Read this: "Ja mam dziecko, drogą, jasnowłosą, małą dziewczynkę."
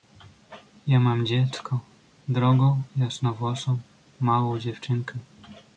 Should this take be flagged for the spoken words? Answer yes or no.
no